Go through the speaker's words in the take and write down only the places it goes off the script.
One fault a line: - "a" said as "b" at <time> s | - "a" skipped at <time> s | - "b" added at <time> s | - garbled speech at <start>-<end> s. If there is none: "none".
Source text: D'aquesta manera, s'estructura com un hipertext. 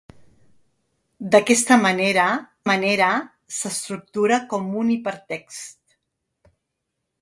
- "manera" added at 2.7 s